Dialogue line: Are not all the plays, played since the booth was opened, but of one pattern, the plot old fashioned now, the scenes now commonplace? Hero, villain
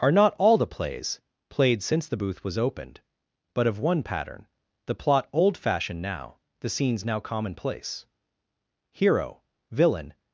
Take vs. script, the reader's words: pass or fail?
pass